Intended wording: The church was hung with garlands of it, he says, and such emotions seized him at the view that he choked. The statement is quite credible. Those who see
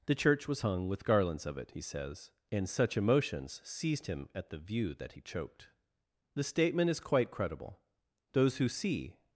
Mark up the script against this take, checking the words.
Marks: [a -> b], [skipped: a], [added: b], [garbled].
The church was hung with garlands of it, he says, and such emotions seized him at the view that he choked. The statement is quite credible. Those who see